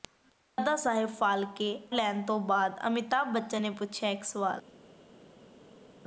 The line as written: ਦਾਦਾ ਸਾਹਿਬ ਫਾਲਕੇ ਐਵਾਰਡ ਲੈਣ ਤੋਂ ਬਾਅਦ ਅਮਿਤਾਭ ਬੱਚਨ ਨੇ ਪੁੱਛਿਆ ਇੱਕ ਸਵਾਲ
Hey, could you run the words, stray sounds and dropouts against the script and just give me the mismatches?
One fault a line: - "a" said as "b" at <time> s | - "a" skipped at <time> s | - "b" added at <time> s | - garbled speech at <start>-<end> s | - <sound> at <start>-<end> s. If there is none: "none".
- "ਐਵਾਰਡ" skipped at 1.7 s